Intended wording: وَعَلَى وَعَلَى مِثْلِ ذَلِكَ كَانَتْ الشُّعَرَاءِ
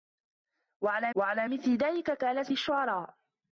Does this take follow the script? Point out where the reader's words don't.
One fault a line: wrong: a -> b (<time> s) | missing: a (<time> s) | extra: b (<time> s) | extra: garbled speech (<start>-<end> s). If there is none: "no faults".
no faults